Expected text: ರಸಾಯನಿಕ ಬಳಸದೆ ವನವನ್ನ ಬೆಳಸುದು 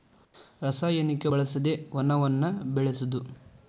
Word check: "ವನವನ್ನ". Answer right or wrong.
right